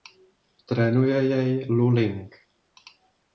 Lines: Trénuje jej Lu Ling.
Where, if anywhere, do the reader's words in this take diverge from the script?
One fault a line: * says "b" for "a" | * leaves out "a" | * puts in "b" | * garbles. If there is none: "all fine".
all fine